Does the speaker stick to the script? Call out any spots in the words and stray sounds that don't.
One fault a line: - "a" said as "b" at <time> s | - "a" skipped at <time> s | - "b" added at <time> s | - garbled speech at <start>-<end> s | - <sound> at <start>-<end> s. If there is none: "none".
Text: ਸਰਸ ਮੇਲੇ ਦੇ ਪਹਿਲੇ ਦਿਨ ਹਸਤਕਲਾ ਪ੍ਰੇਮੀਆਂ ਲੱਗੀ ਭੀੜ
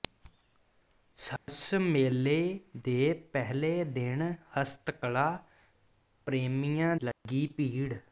- dropout at 1.4-1.5 s
- dropout at 7.1-7.3 s